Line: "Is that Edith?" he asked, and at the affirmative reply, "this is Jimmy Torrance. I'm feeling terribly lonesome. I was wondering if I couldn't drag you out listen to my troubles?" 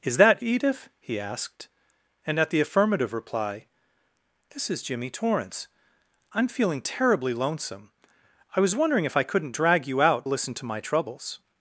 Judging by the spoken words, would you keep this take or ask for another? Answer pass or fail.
pass